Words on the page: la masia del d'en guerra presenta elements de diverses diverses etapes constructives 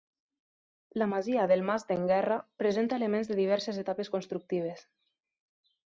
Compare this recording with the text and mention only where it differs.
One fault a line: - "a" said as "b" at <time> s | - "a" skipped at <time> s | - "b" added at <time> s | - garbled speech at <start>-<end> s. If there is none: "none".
- "mas" added at 1.7 s
- "diverses" skipped at 3.8 s